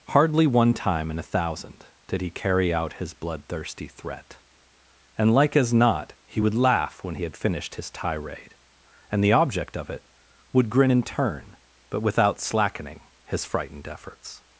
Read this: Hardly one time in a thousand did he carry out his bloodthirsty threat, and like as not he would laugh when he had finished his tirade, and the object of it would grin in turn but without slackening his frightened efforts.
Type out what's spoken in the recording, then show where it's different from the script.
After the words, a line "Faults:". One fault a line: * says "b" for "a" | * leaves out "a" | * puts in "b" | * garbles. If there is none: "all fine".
Hardly one time in a thousand did he carry out his bloodthirsty threat, and like as not he would laugh when he had finished his tirade, and the object of it would grin in turn but without slackening his frightened efforts.
Faults:
all fine